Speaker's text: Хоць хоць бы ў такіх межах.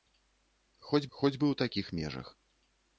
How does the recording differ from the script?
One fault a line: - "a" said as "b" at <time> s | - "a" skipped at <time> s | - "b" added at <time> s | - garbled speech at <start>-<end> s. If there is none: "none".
none